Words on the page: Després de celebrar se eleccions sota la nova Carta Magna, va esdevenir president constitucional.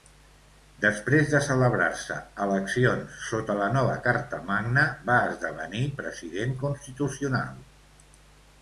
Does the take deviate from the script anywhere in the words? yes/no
no